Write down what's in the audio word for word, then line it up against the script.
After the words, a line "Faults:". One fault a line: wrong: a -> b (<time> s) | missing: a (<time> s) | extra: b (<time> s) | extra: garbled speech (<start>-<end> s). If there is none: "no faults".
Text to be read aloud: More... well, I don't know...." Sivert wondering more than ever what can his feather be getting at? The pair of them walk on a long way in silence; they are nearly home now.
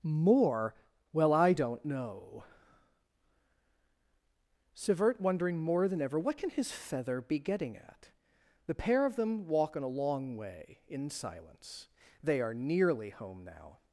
More... well, I don't know...." Sivert wondering more than ever what can his feather be getting at? The pair of them walk on a long way in silence; they are nearly home now.
Faults:
no faults